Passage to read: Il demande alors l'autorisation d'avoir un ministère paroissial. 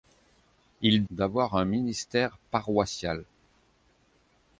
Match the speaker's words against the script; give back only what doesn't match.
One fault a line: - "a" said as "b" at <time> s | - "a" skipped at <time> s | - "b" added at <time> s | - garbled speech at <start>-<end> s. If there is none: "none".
- "demande alors l'autorisation" skipped at 1.1 s